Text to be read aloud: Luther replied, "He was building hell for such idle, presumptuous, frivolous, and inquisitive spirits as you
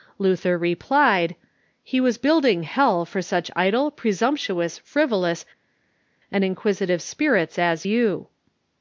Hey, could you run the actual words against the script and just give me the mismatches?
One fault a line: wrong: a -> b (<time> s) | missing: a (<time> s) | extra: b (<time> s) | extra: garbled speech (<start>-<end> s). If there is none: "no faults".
no faults